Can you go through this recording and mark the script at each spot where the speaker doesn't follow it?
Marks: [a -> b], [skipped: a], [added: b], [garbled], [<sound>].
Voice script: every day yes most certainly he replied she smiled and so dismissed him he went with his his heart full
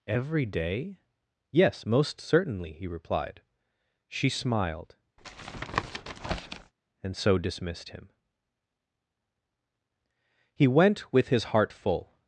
every day yes most certainly he replied she smiled [tap] and so dismissed him he went with his [skipped: his] heart full